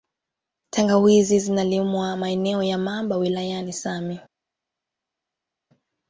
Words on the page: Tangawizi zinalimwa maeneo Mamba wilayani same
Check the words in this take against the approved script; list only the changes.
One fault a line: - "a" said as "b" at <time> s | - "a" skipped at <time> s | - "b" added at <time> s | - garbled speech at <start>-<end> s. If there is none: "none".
- "ya" added at 2.6 s